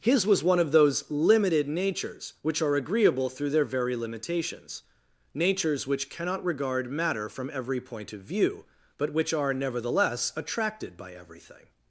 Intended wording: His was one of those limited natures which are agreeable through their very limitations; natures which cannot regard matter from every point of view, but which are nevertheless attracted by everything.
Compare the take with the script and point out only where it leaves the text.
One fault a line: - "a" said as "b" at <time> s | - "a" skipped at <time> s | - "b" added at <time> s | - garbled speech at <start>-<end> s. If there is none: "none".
none